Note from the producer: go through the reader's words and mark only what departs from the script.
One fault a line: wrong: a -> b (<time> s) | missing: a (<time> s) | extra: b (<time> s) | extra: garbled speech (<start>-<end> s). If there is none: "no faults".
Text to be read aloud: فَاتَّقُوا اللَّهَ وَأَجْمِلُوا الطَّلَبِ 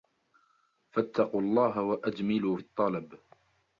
no faults